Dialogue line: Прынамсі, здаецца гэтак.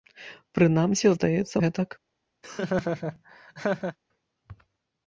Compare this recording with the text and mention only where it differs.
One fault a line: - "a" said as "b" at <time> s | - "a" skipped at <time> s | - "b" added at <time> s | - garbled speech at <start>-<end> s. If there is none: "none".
none